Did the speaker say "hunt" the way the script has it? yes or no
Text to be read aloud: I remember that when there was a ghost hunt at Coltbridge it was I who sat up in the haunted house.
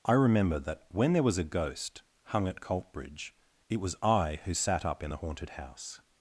no